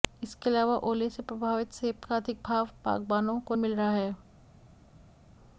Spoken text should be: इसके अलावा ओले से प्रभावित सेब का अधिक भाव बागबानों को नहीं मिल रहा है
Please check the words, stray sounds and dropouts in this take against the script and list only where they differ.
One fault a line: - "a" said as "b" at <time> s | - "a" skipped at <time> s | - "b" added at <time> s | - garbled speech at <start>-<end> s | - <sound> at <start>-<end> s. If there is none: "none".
- "नहीं" skipped at 3.5 s